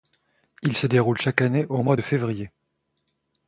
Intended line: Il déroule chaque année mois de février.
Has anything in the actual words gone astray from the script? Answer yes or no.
yes